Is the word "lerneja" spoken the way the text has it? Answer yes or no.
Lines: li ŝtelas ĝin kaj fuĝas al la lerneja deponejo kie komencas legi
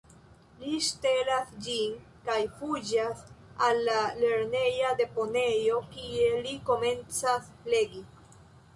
yes